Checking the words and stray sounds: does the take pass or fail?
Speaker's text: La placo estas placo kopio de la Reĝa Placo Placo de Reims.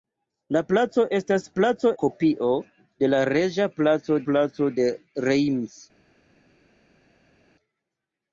pass